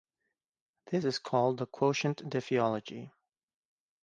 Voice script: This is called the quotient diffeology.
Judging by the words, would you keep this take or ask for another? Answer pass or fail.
pass